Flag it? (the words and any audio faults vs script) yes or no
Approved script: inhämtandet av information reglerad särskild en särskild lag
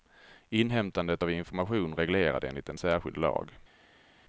yes